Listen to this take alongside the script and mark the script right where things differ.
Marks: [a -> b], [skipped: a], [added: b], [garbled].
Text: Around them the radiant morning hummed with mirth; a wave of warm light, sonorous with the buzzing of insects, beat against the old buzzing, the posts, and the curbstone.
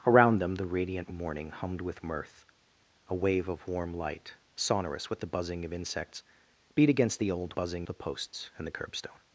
Around them the radiant morning hummed with mirth; a wave of warm light, sonorous with the buzzing of insects, beat against the old buzzing, the posts, and the curbstone.